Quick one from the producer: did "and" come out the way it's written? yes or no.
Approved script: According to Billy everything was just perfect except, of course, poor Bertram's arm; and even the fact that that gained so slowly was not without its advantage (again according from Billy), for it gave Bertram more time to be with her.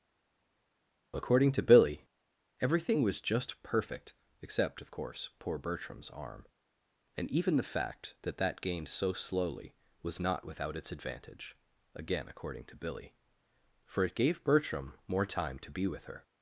yes